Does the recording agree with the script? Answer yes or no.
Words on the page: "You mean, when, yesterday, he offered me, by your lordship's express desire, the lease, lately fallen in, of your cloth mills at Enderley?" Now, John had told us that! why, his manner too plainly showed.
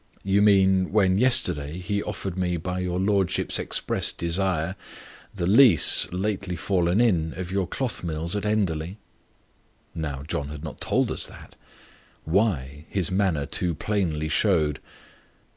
no